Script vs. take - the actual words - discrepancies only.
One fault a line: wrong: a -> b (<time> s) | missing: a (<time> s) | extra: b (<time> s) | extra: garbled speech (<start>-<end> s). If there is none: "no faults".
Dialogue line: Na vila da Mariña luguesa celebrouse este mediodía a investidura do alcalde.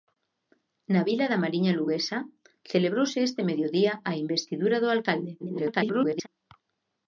extra: garbled speech (5.4-6.3 s)